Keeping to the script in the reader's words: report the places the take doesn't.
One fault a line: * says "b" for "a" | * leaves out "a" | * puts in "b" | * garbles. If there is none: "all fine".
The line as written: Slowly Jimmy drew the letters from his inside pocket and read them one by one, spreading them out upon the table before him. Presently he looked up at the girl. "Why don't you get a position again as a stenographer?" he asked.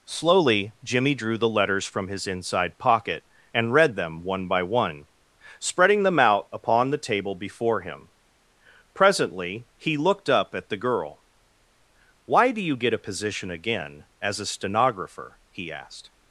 * says "do" for "don't"